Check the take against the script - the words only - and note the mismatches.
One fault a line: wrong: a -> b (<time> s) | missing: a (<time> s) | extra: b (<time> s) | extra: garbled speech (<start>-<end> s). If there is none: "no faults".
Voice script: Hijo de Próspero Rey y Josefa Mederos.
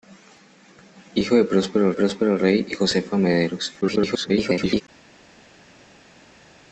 extra: Próspero (1.9 s)
extra: garbled speech (3.8-4.8 s)